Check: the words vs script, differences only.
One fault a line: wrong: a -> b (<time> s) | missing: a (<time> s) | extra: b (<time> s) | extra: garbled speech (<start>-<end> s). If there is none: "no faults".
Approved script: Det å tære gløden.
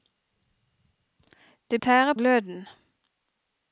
no faults